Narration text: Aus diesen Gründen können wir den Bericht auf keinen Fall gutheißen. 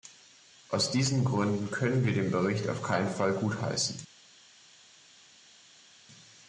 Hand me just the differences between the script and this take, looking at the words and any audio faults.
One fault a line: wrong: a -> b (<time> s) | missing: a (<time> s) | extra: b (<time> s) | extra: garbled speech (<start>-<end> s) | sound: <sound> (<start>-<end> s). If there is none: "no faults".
no faults